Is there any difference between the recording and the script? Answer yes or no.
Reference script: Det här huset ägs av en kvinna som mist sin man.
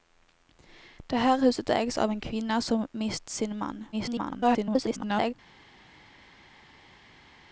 yes